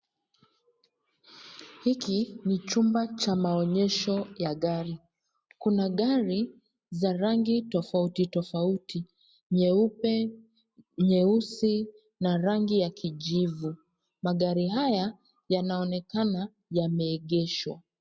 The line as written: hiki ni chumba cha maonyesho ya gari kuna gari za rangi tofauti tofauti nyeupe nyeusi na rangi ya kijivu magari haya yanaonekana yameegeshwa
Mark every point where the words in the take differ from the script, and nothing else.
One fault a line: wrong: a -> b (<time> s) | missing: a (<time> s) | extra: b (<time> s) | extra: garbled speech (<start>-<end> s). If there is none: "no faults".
no faults